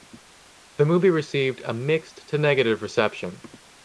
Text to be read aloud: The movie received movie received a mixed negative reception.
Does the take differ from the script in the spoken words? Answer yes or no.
yes